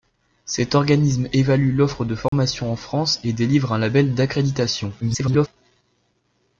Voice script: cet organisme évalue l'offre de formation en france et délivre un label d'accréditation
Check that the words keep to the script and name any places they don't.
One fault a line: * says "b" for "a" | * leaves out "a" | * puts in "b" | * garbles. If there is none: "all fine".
* garbles